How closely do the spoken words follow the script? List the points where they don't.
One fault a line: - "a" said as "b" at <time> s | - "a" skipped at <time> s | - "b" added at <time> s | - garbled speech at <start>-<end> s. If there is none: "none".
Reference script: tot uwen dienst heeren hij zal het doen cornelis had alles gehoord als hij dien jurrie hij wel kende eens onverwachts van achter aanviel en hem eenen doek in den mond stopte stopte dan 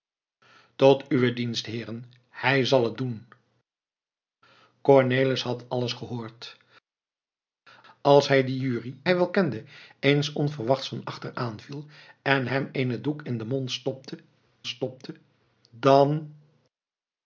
none